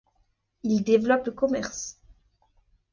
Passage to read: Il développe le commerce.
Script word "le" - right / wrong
right